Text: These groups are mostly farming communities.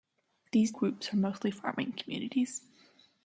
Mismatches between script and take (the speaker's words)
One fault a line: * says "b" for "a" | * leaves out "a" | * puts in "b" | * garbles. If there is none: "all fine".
all fine